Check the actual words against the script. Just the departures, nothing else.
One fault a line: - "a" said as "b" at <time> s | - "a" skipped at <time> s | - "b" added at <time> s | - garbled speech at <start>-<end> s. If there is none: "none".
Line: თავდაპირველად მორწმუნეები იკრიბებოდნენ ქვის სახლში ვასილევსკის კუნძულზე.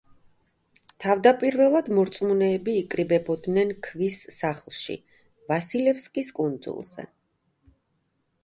none